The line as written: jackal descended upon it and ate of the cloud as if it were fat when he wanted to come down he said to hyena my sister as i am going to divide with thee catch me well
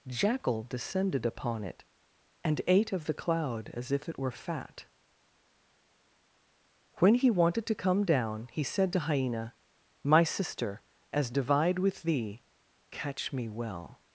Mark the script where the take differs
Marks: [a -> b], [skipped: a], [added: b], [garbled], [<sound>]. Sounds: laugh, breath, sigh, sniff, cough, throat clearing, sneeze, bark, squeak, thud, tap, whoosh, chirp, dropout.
jackal descended upon it and ate of the cloud as if it were fat when he wanted to come down he said to hyena my sister as [skipped: i am going to] divide with thee catch me well